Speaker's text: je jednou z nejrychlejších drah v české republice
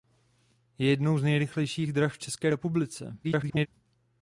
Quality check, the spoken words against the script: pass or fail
fail